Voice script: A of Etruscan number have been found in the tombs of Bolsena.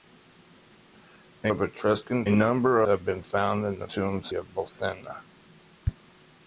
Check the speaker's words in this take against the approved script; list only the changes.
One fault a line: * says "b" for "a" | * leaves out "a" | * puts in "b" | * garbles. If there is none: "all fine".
all fine